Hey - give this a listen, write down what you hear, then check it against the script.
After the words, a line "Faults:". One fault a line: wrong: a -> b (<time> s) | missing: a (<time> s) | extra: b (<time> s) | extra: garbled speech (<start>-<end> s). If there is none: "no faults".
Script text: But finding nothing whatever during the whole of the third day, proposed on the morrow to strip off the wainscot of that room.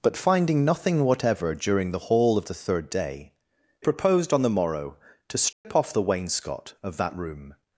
But finding nothing whatever during the whole of the third day, proposed on the morrow to strip off the wainscot of that room.
Faults:
no faults